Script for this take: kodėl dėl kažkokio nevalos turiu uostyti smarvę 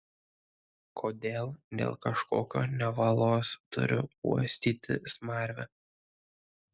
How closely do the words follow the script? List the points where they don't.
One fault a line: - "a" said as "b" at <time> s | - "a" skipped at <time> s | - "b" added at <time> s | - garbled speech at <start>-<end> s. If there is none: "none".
none